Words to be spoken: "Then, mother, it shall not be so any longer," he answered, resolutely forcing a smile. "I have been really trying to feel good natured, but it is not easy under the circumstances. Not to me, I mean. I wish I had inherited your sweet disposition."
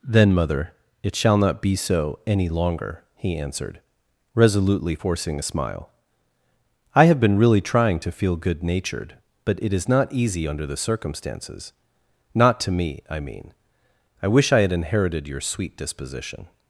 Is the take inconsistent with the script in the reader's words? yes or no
no